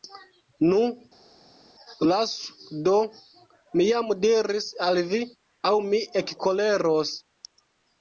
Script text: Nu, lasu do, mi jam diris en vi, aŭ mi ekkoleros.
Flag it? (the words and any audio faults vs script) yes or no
yes